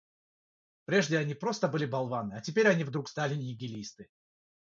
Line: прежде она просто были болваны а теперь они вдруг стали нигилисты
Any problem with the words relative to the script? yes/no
yes